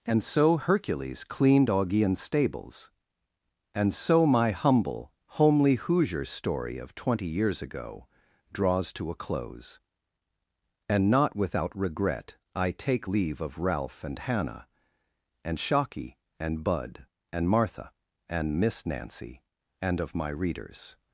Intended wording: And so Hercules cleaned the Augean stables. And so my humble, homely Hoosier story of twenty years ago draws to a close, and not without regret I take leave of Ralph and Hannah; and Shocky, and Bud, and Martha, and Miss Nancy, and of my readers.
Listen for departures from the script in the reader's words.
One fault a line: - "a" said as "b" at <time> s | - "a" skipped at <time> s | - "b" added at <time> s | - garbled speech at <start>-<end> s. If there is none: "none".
- "the" skipped at 1.7 s